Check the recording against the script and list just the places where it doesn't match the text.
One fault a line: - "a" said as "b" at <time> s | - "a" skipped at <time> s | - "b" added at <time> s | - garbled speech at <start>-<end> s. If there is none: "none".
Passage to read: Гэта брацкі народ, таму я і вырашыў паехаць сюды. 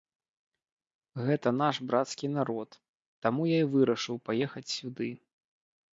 - "наш" added at 1.6 s